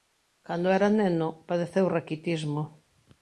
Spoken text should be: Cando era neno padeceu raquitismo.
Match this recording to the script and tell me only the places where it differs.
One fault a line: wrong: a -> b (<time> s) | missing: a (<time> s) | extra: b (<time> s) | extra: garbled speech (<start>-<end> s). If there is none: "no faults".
no faults